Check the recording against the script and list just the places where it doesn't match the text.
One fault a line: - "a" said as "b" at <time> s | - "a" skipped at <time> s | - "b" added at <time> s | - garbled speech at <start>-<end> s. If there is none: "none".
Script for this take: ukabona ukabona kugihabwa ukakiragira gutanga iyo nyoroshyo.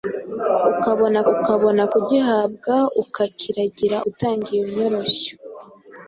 none